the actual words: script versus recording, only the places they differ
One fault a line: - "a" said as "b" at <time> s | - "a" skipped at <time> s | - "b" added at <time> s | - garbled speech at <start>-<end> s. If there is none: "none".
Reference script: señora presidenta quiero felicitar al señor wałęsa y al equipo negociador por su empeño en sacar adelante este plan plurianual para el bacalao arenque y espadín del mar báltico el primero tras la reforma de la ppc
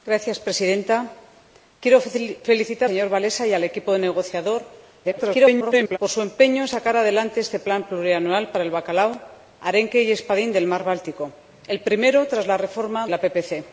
- "al" skipped at 2.9 s
- garbled speech at 5.0-6.0 s
- "de" skipped at 13.1 s